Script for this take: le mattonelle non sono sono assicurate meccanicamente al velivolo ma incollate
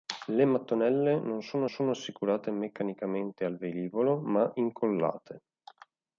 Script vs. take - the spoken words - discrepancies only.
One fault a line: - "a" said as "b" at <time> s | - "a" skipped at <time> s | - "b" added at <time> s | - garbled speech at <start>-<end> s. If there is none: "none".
none